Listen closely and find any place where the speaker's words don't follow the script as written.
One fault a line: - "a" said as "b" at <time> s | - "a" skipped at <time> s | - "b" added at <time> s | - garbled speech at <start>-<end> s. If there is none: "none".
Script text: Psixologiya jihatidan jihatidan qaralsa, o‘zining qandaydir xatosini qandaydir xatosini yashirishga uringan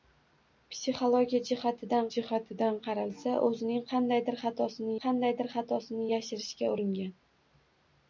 none